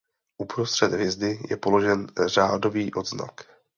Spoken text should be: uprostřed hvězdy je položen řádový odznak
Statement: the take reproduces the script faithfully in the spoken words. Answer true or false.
true